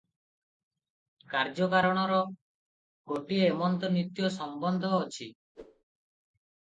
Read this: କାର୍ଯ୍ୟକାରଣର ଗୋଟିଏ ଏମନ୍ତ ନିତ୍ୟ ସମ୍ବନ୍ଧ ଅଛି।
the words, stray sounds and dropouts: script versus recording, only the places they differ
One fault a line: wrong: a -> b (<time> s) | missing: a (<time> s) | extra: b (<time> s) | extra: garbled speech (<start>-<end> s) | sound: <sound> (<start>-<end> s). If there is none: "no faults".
sound: whoosh (5.5-5.8 s)